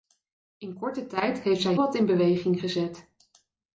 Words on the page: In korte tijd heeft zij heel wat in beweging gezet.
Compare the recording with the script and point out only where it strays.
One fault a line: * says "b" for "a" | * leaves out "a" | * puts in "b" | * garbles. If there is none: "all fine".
* leaves out "heel"